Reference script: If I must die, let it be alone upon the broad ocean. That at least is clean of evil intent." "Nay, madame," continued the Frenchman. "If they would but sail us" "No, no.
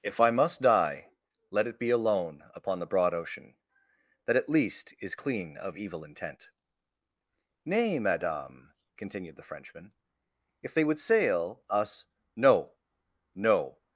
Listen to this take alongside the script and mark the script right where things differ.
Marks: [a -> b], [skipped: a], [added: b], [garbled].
If I must die, let it be alone upon the broad ocean. That at least is clean of evil intent." "Nay, madame," continued the Frenchman. "If they would [skipped: but] sail us" "No, no.